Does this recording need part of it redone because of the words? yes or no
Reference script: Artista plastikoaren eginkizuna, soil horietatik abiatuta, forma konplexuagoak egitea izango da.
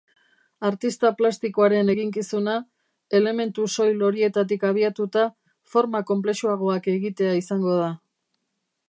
yes